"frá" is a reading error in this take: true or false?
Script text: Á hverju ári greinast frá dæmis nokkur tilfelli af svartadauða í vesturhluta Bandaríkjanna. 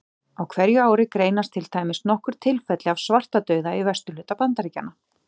true